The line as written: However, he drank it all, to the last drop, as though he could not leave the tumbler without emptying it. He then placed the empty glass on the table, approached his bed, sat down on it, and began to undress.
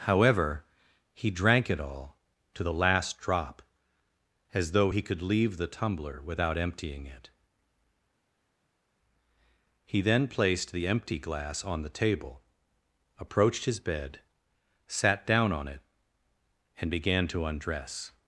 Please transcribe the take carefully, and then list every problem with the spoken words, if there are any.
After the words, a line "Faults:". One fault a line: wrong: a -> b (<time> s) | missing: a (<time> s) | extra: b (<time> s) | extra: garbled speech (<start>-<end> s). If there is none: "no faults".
However, he drank it all, to the last drop, as though he could leave the tumbler without emptying it. He then placed the empty glass on the table, approached his bed, sat down on it, and began to undress.
Faults:
missing: not (5.2 s)